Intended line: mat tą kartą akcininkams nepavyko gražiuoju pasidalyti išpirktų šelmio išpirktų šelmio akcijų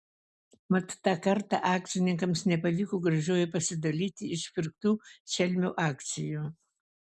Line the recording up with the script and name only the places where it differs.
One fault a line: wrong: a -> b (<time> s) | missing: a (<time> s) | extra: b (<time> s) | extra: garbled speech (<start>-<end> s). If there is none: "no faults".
missing: išpirktų šelmio (5.8 s)